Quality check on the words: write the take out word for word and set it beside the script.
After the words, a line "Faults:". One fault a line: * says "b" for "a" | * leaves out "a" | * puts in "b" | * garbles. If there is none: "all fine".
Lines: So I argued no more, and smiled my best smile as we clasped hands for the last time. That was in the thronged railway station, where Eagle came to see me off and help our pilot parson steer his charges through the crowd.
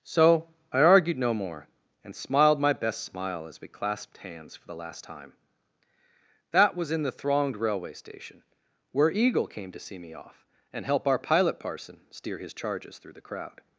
So I argued no more, and smiled my best smile as we clasped hands for the last time. That was in the thronged railway station, where Eagle came to see me off and help our pilot parson steer his charges through the crowd.
Faults:
all fine